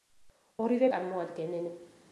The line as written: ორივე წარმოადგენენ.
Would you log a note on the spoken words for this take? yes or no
no